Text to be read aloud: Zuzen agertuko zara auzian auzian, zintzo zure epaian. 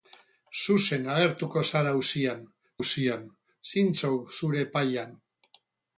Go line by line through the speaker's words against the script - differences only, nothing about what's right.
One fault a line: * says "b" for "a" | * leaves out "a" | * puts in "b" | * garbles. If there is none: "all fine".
all fine